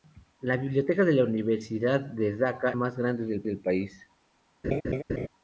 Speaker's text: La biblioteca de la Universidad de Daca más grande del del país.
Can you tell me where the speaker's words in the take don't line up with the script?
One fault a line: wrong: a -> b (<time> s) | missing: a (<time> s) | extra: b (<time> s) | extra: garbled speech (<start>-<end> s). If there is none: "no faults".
no faults